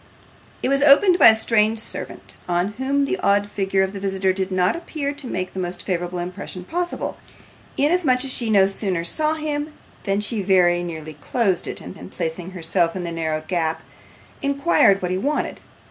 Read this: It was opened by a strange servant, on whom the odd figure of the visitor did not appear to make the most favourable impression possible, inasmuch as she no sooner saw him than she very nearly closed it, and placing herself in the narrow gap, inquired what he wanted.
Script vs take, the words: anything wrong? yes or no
yes